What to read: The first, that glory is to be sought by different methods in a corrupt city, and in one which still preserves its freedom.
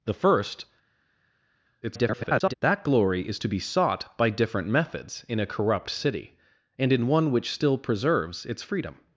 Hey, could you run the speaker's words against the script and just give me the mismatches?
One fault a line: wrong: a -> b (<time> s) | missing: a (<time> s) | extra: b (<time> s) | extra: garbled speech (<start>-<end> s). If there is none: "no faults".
extra: garbled speech (1.8-2.5 s)